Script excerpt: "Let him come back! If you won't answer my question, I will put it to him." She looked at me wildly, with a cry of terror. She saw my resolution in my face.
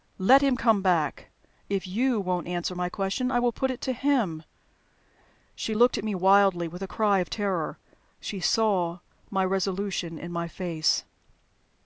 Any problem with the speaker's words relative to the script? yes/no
no